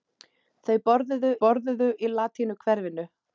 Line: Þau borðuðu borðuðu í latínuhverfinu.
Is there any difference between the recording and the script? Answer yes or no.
no